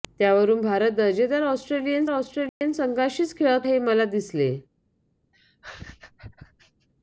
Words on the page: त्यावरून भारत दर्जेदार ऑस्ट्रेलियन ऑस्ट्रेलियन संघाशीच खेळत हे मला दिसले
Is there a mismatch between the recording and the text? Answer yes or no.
no